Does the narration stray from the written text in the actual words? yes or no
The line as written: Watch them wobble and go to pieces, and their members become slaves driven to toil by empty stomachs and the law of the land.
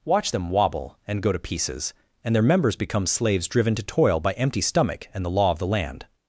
yes